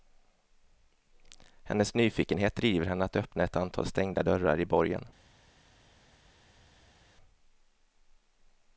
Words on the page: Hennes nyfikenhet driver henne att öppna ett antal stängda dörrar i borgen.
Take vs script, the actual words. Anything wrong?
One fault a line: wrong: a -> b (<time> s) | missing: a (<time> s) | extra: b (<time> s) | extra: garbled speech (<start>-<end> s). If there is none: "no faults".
no faults